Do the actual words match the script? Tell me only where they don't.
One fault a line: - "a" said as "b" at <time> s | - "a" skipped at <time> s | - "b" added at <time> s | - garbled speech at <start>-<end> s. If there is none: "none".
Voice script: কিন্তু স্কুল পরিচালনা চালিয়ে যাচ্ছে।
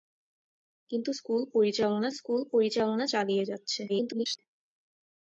- "স্কুল পরিচালনা" added at 2.1 s
- garbled speech at 3.9-4.4 s